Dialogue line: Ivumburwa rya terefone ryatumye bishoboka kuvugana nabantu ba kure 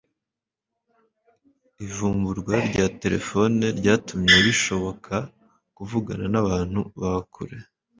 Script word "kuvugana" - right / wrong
right